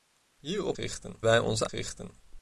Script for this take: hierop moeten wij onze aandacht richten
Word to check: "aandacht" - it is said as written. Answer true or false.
false